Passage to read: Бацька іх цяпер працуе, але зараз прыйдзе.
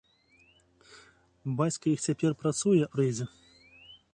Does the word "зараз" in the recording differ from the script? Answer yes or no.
yes